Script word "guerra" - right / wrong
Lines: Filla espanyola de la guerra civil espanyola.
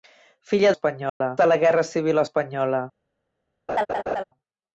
right